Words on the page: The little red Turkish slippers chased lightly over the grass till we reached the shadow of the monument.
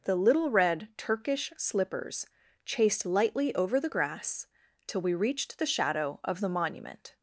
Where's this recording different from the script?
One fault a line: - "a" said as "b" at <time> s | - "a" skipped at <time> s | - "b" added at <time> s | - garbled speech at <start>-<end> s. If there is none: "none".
none